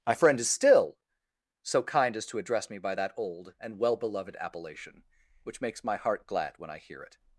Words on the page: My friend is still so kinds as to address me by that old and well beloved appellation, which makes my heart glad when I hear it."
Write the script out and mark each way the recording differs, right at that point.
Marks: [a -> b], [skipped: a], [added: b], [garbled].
My friend is still so [kinds -> kind] as to address me by that old and well beloved appellation, which makes my heart glad when I hear it."